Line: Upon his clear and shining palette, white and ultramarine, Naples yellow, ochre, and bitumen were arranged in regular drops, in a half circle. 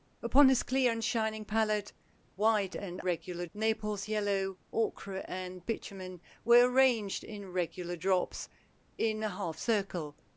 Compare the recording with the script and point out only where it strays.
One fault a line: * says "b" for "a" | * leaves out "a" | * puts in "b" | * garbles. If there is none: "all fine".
* says "regular" for "ultramarine"